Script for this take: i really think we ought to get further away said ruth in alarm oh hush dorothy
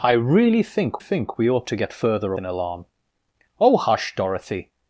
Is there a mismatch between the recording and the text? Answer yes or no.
yes